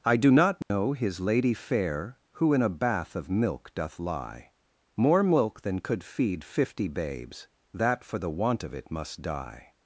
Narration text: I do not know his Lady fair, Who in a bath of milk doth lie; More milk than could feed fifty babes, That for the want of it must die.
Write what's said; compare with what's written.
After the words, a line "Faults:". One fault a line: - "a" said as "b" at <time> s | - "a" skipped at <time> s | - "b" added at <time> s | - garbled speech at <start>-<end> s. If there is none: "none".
I do not know his Lady fair, Who in a bath of milk doth lie; More milk than could feed fifty babes, That for the want of it must die.
Faults:
none